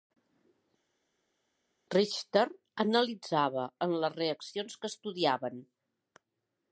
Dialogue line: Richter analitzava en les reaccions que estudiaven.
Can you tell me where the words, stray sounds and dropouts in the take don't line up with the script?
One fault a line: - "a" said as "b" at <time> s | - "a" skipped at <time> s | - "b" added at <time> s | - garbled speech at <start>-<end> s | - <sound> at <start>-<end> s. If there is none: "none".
none